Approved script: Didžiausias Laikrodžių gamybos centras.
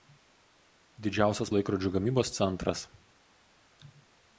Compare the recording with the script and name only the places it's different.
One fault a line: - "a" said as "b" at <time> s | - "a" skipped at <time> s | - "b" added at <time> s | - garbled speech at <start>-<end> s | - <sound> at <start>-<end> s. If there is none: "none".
none